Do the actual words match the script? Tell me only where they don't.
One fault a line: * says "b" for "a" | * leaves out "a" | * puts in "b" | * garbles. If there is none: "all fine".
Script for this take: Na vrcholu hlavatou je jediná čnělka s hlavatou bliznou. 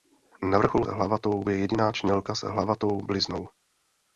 all fine